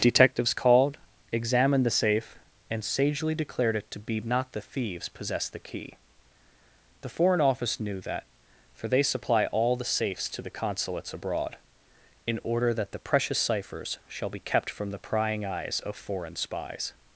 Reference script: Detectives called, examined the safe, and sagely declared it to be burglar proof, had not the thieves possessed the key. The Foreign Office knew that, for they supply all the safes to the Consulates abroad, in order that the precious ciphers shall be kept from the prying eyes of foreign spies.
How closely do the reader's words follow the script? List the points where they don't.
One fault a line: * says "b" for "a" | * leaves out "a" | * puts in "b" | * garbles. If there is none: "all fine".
* leaves out "burglar proof had"